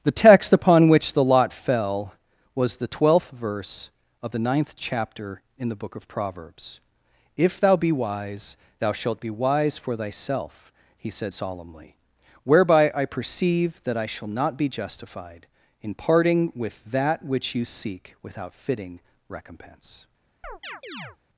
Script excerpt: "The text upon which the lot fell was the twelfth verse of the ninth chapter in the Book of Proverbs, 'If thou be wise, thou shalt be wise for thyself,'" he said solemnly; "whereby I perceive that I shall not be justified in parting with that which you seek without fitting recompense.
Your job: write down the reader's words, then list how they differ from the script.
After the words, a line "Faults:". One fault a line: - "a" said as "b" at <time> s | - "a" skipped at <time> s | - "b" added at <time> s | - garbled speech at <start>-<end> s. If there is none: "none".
"The text upon which the lot fell was the twelfth verse of the ninth chapter in the Book of Proverbs, 'If thou be wise, thou shalt be wise for thyself,'" he said solemnly; "whereby I perceive that I shall not be justified in parting with that which you seek without fitting recompense.
Faults:
none